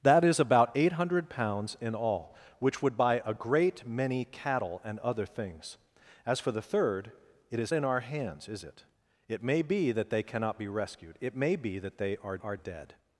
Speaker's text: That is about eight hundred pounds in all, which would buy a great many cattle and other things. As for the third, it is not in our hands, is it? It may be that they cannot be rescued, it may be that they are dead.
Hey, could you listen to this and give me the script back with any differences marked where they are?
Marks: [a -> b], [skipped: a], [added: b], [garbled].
That is about eight hundred pounds in all, which would buy a great many cattle and other things. As for the third, it is [skipped: not] in our hands, is it? It may be that they cannot be rescued, it may be that they are [added: are] dead.